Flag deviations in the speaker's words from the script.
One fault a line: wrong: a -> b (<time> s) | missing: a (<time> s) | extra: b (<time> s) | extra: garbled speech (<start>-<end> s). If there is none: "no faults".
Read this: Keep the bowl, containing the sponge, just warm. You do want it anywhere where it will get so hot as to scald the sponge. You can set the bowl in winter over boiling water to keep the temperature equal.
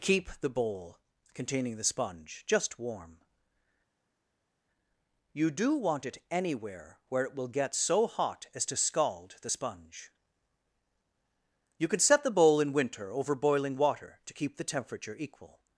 no faults